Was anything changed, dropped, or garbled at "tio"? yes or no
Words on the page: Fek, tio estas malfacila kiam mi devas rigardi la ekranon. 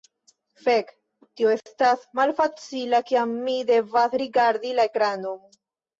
no